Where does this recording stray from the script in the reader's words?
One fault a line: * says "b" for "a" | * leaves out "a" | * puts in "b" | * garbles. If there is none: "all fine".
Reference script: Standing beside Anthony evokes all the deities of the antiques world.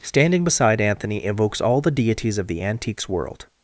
all fine